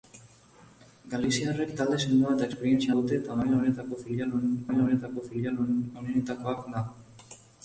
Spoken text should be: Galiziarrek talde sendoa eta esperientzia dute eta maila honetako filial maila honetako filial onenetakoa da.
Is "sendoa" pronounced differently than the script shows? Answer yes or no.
no